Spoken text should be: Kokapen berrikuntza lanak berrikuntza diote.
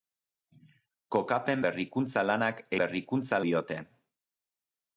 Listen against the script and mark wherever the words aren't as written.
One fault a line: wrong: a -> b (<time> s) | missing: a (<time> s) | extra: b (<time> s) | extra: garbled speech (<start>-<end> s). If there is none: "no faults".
no faults